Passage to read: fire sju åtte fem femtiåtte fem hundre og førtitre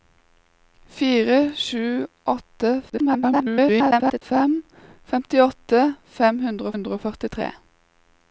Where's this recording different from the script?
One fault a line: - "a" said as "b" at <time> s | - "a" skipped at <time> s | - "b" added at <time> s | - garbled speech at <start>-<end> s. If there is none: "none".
- garbled speech at 2.9-4.2 s
- "hundre" added at 6.7 s